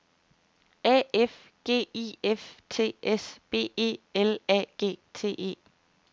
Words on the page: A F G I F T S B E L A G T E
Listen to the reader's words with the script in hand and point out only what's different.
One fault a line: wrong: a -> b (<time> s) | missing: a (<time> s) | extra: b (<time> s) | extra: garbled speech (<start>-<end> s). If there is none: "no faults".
no faults